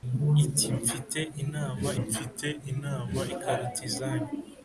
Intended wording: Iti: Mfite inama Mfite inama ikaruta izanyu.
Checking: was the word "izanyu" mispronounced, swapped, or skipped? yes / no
no